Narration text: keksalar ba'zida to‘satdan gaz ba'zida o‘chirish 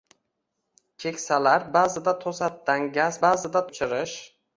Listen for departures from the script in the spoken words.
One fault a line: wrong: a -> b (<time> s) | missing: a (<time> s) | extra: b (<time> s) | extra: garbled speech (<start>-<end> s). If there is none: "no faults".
no faults